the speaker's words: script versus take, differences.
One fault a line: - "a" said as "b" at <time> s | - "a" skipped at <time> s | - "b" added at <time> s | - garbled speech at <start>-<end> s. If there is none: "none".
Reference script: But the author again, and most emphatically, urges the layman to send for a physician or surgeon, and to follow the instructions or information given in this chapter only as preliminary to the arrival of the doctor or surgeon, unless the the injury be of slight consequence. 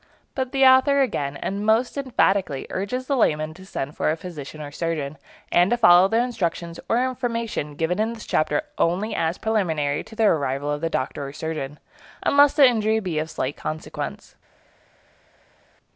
- "the" skipped at 12.7 s